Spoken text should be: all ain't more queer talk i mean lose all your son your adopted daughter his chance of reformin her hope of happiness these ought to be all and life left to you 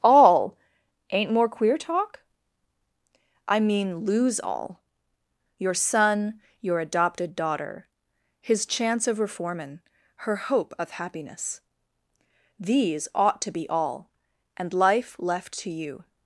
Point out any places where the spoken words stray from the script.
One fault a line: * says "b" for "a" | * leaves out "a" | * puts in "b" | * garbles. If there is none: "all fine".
all fine